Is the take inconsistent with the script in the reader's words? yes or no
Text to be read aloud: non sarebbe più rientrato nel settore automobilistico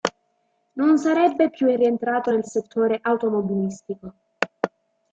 no